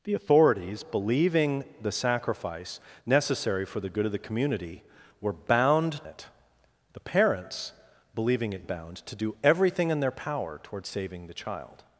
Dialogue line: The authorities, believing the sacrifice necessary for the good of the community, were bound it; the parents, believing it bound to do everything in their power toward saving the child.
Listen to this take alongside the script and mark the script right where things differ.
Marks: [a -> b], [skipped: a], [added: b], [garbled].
The authorities, believing the sacrifice necessary for the good of the community, were bound it; the parents, believing it bound to do everything in their power toward saving the child.